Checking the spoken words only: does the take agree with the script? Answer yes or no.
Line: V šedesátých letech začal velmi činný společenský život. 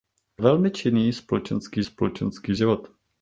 no